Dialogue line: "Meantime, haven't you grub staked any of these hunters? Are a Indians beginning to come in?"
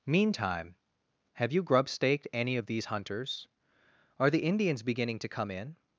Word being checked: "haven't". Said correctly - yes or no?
no